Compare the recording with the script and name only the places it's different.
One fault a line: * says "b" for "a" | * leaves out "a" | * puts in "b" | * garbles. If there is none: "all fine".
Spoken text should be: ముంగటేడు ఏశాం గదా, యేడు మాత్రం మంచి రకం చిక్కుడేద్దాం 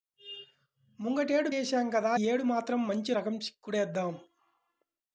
all fine